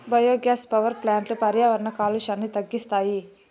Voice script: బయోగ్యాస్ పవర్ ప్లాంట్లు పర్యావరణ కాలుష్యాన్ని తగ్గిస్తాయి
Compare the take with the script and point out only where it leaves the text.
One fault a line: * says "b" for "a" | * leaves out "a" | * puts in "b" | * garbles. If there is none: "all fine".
all fine